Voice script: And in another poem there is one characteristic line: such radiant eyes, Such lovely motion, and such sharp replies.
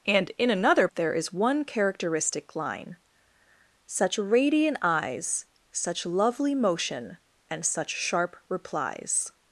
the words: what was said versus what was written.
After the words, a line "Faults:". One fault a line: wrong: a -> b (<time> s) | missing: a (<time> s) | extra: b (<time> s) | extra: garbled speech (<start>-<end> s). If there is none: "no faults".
And in another there is one characteristic line: such radiant eyes, Such lovely motion, and such sharp replies.
Faults:
missing: poem (0.9 s)